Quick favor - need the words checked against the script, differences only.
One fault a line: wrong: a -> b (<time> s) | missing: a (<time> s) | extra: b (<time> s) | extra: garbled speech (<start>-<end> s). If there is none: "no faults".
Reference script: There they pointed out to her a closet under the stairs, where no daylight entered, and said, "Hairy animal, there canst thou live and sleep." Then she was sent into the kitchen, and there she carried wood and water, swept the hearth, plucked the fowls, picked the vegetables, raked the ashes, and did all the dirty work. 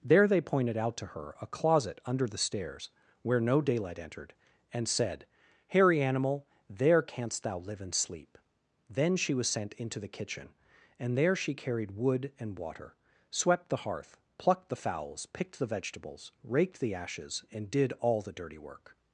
no faults